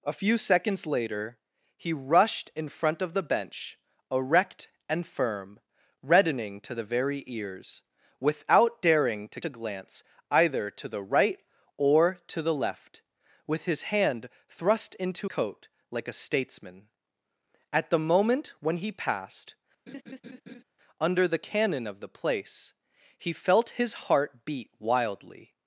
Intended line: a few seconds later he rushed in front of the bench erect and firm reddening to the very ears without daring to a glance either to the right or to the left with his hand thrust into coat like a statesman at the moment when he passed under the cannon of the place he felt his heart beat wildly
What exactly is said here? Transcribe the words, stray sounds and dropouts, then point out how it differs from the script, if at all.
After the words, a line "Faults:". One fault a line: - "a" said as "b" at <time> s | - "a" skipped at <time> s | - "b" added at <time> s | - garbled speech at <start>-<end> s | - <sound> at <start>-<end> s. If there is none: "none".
a few seconds later he rushed in front of the bench erect and firm reddening to the very ears without daring to a glance either to the right or to the left with his hand thrust into coat like a statesman at the moment when he passed under the cannon of the place he felt his heart beat wildly
Faults:
- laugh at 19.9-20.6 s